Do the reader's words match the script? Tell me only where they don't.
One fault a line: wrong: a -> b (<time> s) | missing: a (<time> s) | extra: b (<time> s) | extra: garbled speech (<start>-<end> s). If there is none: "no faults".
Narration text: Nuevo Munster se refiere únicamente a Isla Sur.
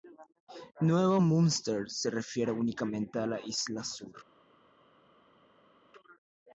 extra: la (3.3 s)